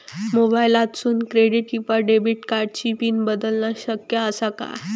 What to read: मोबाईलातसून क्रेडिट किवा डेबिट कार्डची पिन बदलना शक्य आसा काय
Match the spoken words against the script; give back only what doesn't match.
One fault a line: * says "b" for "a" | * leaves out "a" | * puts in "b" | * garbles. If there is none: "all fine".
all fine